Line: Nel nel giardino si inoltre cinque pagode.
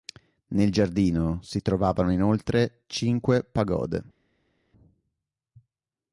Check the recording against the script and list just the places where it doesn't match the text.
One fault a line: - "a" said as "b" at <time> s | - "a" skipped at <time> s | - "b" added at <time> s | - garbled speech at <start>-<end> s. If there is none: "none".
- "nel" skipped at 0.7 s
- "trovavano" added at 1.6 s